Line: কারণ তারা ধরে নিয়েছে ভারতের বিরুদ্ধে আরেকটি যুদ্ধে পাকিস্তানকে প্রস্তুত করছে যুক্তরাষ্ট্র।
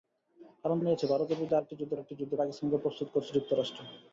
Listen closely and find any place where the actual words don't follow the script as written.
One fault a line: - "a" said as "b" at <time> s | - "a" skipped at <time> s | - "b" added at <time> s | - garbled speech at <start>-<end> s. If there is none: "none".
- "তারা ধরে" skipped at 0.8 s
- "আরেকটি যুদ্ধে" added at 1.9 s